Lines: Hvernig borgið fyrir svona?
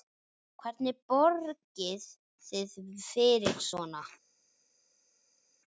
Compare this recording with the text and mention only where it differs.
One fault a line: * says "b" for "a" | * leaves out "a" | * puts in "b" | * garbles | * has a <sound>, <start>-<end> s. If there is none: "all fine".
* puts in "þið"